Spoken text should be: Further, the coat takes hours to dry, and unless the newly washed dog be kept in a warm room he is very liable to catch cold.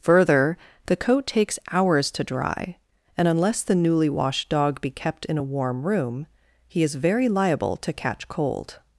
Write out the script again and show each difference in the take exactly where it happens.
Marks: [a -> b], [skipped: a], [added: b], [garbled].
Further, the coat takes hours to dry, and unless the newly washed dog be kept in a warm room he is very liable to catch cold.